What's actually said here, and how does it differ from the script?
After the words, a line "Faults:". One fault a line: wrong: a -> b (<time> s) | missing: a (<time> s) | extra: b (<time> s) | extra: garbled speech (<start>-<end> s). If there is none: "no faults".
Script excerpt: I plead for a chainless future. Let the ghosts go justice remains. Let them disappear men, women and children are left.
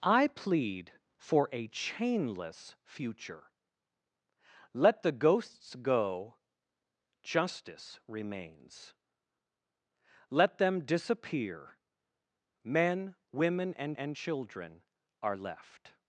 I plead for a chainless future. Let the ghosts go justice remains. Let them disappear men, women and and children are left.
Faults:
extra: and (13.9 s)